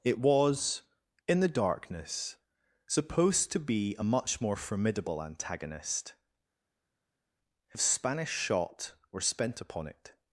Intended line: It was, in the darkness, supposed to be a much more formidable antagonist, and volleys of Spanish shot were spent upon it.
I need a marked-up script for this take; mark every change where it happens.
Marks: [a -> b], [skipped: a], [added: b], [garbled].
It was, in the darkness, supposed to be a much more formidable antagonist, [skipped: and volleys] of Spanish shot were spent upon it.